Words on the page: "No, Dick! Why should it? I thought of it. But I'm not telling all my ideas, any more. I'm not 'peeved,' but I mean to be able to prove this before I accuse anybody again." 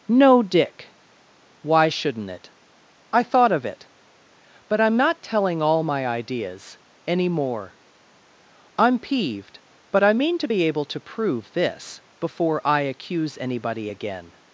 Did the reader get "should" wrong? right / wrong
wrong